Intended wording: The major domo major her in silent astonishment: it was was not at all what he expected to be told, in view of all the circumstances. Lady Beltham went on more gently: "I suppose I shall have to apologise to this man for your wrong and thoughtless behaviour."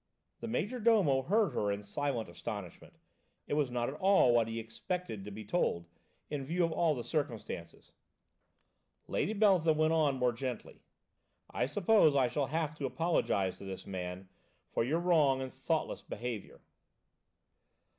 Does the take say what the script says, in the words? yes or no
no